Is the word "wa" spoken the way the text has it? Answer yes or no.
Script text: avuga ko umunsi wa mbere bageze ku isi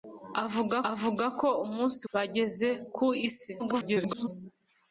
no